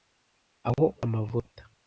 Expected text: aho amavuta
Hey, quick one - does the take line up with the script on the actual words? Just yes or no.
yes